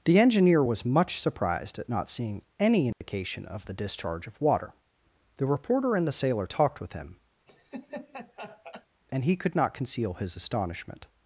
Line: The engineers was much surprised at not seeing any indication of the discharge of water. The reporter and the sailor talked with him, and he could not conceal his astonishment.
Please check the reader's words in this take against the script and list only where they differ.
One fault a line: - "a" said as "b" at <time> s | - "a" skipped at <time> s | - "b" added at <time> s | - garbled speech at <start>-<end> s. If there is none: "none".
- "engineers" said as "engineer" at 0.2 s